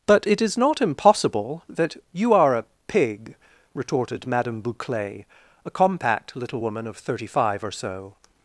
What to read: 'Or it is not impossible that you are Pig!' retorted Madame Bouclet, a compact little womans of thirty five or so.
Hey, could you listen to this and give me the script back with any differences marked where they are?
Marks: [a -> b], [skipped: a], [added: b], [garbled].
['Or -> But] it is not impossible that you are [added: a] Pig!' retorted Madame Bouclet, a compact little [womans -> woman] of thirty five or so.